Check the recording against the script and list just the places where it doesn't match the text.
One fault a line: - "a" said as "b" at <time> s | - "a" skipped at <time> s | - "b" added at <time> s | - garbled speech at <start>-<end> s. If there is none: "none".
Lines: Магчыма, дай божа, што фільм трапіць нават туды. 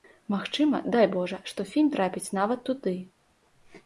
none